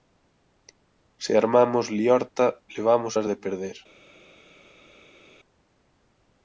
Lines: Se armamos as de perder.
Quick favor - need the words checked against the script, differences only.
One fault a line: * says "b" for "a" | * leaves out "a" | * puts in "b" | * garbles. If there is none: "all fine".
* puts in "liorta levamos"